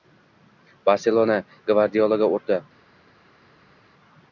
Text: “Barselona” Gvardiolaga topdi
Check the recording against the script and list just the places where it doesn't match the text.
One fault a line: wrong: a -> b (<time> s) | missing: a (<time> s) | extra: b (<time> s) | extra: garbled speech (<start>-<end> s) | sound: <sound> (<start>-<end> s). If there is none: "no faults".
no faults